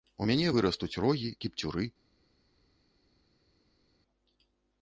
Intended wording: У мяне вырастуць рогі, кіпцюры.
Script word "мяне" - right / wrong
right